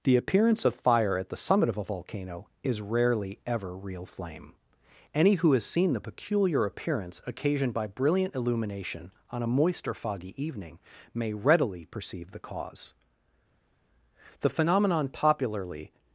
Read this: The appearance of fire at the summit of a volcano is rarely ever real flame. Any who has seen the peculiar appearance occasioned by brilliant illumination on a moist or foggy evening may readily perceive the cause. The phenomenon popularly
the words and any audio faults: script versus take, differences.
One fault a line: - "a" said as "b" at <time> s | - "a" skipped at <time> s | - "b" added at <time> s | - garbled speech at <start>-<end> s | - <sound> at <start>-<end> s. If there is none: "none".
none